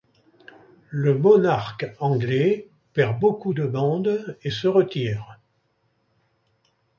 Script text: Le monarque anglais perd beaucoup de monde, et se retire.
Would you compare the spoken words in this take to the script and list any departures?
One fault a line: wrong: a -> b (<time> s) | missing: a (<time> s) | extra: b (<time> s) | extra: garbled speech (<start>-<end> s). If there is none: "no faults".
no faults